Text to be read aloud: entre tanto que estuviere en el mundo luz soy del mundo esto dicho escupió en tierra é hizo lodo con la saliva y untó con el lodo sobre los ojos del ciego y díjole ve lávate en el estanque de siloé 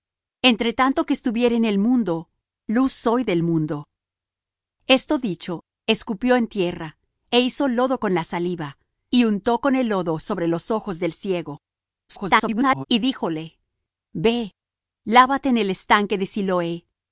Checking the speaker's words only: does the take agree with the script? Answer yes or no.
no